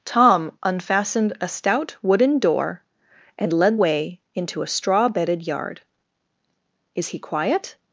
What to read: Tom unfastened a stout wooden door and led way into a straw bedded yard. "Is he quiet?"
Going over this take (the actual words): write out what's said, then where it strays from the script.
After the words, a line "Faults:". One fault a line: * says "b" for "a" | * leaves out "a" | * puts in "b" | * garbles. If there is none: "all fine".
Tom unfastened a stout wooden door and led way into a straw bedded yard. "Is he quiet?"
Faults:
all fine